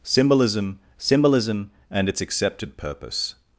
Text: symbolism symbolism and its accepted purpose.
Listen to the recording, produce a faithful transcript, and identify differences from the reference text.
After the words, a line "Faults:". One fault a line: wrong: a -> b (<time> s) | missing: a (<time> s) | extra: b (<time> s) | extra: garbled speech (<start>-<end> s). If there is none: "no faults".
symbolism symbolism and its accepted purpose.
Faults:
no faults